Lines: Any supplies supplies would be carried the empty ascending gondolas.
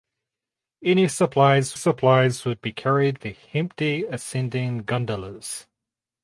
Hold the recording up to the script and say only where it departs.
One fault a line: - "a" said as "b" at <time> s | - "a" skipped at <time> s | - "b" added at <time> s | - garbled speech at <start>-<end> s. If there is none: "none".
none